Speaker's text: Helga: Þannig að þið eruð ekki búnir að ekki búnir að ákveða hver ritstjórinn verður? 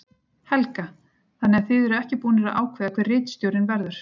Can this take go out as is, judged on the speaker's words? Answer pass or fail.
fail